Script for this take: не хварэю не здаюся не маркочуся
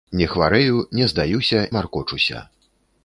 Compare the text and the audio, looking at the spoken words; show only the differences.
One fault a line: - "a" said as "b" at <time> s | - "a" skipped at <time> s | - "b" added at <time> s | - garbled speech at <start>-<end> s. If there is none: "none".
- "не" skipped at 1.6 s